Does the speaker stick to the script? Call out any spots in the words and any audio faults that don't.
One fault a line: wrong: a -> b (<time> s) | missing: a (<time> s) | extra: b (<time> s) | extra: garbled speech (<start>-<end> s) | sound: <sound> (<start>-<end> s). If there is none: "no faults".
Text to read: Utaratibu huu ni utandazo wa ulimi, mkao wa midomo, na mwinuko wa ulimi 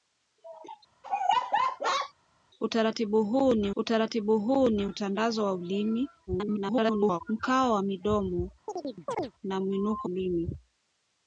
sound: laugh (1.0-2.1 s)
extra: utaratibu huu ni (3.8 s)
extra: garbled speech (6.3-7.2 s)
sound: chirp (8.7-9.3 s)
missing: wa (10.1 s)